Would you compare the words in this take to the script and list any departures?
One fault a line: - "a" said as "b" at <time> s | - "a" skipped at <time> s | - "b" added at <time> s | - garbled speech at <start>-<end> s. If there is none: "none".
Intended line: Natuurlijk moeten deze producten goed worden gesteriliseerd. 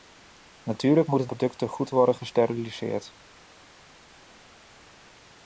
- "deze" skipped at 1.3 s